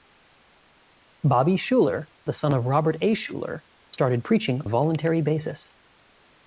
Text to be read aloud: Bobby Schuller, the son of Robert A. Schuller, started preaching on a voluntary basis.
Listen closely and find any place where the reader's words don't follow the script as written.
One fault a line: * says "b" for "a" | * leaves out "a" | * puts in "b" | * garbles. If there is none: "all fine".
* leaves out "on"